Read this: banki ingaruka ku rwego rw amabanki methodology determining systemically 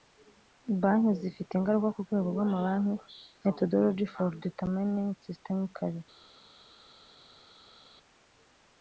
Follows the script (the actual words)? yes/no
no